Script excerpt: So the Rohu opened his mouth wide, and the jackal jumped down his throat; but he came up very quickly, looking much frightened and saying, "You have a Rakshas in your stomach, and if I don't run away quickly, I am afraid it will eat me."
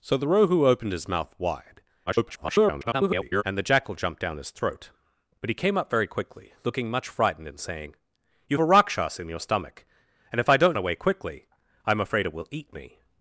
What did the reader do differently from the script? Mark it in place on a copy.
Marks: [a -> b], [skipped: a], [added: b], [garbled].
So the Rohu opened his mouth wide, [garbled] and the jackal jumped down his throat; but he came up very quickly, looking much frightened and saying, "You [skipped: have] a Rakshas in your stomach, and if I don't [skipped: run] away quickly, I am afraid it will eat me."